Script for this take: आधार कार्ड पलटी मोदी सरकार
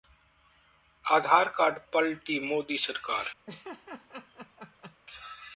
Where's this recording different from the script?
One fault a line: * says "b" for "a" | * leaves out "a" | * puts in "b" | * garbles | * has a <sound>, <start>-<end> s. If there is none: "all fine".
* has a laugh, 3.5-5.0 s